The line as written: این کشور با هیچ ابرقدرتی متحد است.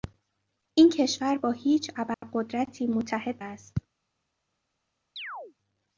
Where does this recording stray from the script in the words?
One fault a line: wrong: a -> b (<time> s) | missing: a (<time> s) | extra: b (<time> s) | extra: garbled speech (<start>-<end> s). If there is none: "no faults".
no faults